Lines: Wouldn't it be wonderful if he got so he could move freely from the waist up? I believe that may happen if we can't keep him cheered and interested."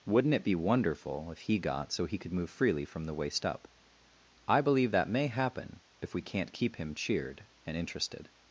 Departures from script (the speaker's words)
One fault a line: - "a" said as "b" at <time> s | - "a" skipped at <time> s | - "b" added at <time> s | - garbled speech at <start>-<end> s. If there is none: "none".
none